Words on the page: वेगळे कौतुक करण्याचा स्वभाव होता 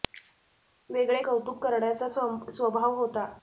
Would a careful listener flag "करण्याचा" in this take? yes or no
no